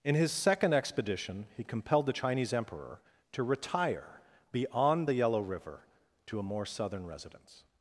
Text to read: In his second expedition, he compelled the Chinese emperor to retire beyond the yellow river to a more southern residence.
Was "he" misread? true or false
false